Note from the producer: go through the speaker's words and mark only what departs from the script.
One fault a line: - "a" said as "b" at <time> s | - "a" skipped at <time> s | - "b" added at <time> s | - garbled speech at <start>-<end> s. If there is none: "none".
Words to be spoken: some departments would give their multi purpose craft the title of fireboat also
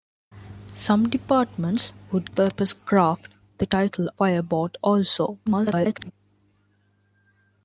- "give their multi" skipped at 2.3 s
- "of" skipped at 4.1 s
- garbled speech at 5.5-6.1 s